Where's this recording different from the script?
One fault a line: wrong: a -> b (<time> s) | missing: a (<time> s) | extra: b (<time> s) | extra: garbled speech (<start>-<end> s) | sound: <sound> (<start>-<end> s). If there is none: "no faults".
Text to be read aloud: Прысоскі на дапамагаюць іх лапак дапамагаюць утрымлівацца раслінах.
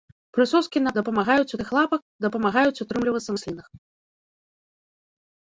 no faults